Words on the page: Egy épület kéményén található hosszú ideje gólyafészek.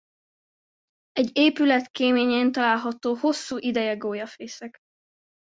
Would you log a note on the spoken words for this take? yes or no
no